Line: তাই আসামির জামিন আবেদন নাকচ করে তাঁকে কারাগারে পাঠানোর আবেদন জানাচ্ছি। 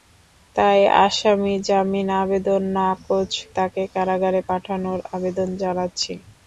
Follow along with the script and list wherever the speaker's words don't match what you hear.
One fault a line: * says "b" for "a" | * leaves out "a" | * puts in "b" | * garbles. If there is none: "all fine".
* leaves out "করে"